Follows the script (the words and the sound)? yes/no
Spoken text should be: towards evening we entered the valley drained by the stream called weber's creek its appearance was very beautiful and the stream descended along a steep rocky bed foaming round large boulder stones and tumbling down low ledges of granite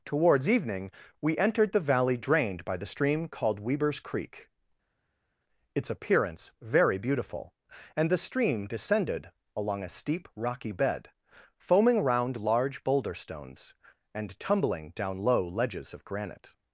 no